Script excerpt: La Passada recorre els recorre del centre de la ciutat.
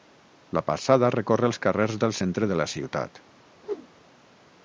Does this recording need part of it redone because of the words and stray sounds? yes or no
yes